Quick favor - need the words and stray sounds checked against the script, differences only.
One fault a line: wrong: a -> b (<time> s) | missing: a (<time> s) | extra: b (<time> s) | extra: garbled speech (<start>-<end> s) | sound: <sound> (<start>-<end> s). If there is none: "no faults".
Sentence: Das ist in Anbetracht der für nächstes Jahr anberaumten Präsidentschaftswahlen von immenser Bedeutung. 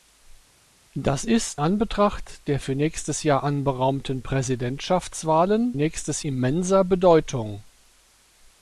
missing: in (1.6 s)
wrong: von -> nächstes (5.7 s)